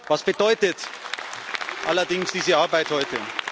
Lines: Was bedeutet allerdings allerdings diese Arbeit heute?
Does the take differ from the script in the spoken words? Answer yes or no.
yes